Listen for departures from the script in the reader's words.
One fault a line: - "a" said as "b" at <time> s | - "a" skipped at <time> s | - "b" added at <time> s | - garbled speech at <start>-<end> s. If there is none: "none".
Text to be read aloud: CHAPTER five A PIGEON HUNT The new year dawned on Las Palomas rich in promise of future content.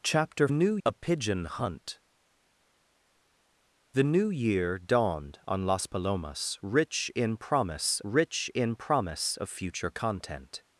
- "five" said as "new" at 0.5 s
- "rich in promise" added at 8.0 s